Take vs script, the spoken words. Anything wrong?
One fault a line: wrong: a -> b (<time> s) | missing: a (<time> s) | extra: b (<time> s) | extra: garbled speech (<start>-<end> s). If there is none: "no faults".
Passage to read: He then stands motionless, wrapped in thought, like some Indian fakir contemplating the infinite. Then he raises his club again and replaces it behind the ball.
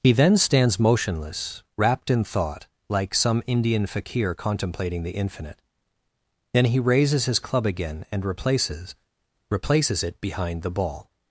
extra: replaces (9.5 s)